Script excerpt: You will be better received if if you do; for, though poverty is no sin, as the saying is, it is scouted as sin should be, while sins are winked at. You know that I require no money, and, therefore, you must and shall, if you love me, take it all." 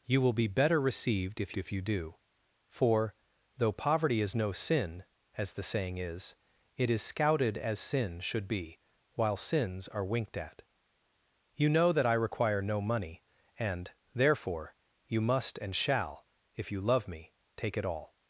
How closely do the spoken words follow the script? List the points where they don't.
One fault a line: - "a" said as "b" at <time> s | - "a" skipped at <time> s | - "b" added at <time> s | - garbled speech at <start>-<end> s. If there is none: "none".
none